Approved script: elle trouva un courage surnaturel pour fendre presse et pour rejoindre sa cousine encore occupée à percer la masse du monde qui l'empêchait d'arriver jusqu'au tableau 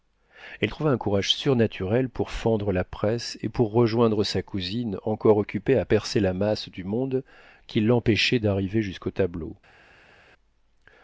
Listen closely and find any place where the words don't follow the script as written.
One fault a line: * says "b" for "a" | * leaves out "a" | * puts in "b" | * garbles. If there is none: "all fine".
* puts in "la"